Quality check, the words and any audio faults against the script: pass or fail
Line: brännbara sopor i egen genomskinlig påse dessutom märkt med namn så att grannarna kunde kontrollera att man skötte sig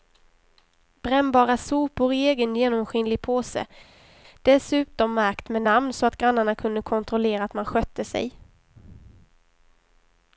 pass